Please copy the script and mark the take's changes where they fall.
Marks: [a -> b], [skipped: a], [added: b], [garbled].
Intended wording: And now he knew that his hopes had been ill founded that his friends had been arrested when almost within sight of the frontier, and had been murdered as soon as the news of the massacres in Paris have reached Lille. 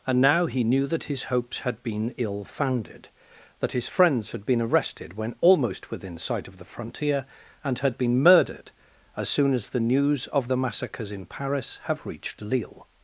And now he knew that his hopes had been ill founded that his friends had been arrested when almost within sight of the frontier, and had been murdered as soon as the news of the massacres in Paris have reached Lille.